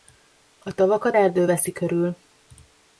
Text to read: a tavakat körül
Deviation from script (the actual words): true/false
true